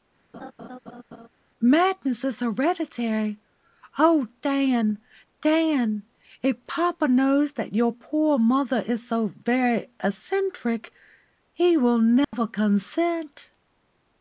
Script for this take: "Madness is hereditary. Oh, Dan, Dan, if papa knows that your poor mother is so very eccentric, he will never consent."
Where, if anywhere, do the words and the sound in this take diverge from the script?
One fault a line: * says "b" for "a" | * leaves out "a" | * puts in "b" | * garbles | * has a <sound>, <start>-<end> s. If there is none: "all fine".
* has a laugh, 0.3-1.3 s
* has a dropout, 12.2-12.3 s